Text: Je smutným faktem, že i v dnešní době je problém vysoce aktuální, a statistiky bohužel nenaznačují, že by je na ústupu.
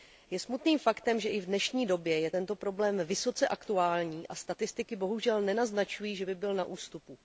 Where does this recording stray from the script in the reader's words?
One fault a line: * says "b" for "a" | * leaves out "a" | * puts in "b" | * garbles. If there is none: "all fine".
* puts in "tento"
* says "byl" for "je"